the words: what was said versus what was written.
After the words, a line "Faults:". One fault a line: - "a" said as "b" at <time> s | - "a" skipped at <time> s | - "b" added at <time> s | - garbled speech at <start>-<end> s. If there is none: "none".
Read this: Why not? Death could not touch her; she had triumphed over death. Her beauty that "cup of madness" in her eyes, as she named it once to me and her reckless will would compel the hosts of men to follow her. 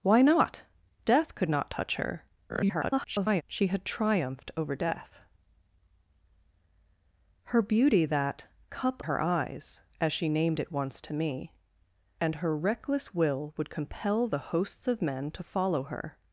Why not? Death could not touch her; [garbled] she had triumphed over death. Her beauty that "cup her eyes, as she named it once to me and her reckless will would compel the hosts of men to follow her.
Faults:
- garbled speech at 2.5-3.4 s
- "of madness in" skipped at 9.0 s